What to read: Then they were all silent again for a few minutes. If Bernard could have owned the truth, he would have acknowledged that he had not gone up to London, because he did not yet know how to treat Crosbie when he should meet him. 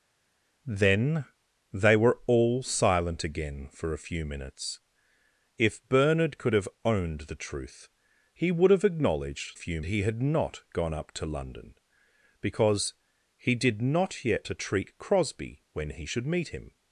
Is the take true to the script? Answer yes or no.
no